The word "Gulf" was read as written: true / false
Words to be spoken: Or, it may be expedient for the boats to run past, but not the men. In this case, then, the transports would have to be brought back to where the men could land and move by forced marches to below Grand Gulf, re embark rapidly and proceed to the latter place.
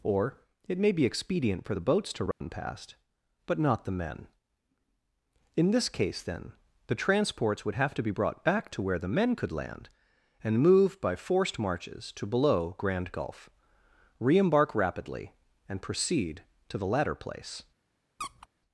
true